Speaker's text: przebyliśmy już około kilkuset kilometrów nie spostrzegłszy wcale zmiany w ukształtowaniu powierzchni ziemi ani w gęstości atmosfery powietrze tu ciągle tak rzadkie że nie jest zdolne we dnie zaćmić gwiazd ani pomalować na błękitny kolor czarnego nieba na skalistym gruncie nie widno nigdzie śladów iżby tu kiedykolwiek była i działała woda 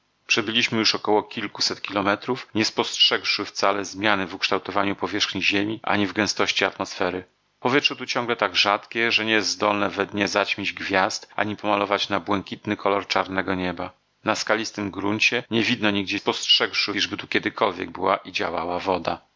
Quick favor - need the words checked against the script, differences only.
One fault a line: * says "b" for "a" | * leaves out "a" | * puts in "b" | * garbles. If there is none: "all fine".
* says "spostrzegłszy" for "śladów"